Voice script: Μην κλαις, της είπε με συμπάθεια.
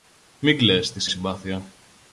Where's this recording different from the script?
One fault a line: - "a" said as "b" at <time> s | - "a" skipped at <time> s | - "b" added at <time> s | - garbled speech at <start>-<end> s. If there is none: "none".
- "είπε με" skipped at 1.1 s